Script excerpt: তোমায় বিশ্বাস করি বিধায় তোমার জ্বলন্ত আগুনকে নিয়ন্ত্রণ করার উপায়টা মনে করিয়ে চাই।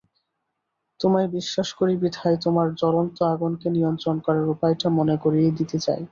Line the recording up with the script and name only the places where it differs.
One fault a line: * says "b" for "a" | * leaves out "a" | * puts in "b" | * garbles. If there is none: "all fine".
* puts in "দিতে"